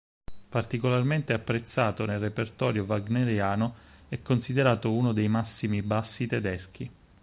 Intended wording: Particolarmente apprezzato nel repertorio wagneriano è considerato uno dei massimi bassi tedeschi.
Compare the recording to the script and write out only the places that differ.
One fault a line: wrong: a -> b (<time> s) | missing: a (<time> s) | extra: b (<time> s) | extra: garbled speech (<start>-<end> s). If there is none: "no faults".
no faults